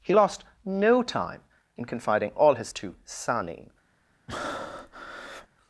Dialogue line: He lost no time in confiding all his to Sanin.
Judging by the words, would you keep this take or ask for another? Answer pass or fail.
pass